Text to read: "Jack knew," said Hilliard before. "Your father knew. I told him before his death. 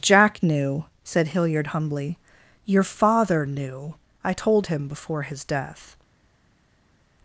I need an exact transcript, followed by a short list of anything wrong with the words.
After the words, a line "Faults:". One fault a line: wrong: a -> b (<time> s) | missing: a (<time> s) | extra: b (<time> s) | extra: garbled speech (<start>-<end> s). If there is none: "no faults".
"Jack knew," said Hilliard humbly. "Your father knew. I told him before his death.
Faults:
wrong: before -> humbly (1.7 s)